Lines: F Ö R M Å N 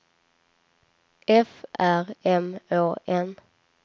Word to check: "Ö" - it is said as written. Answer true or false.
false